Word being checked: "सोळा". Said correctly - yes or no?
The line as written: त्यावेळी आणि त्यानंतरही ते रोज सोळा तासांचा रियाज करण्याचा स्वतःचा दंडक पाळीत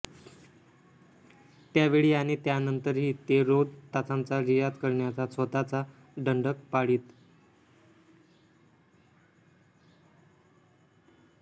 no